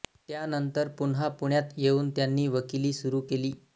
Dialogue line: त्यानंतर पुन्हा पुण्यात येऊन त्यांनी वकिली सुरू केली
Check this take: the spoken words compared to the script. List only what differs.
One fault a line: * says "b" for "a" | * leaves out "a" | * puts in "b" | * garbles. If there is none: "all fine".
all fine